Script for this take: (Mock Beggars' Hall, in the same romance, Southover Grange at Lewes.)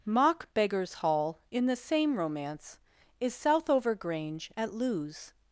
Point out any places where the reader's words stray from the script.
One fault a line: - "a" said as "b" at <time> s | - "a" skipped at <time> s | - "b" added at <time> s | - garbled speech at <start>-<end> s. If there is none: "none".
- "is" added at 3.2 s